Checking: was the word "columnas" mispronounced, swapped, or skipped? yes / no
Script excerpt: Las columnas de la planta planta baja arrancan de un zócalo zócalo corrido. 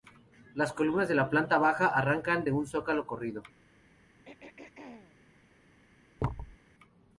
no